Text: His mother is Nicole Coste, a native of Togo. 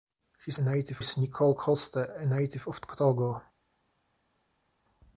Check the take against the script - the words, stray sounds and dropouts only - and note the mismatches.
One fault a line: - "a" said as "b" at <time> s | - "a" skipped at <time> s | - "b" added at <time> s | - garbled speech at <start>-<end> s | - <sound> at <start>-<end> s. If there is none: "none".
- "mother" said as "native" at 0.6 s